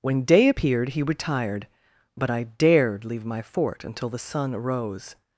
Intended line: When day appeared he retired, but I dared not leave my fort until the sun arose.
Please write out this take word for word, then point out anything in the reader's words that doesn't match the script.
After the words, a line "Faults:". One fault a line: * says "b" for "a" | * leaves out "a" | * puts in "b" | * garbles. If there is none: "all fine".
When day appeared he retired, but I dared leave my fort until the sun arose.
Faults:
* leaves out "not"